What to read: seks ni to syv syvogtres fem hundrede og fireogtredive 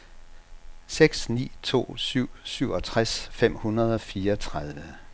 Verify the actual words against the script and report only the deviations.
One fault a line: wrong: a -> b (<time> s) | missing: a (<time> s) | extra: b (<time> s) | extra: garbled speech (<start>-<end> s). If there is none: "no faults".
no faults